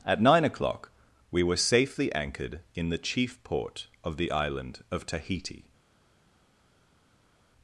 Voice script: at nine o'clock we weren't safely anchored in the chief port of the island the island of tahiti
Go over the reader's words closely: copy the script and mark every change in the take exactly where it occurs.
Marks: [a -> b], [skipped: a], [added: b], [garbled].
at nine o'clock we [weren't -> were] safely anchored in the chief port of the island [skipped: the island] of tahiti